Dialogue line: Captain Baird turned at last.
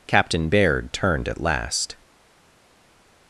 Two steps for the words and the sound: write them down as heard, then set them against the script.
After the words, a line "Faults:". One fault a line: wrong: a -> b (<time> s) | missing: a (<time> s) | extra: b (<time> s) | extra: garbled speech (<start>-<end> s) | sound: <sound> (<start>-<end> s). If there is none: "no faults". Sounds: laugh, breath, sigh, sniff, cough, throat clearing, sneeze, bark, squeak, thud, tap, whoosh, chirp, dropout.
Captain Baird turned at last.
Faults:
no faults